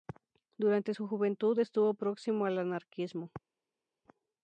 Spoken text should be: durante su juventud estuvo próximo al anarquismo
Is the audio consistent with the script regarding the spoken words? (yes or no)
yes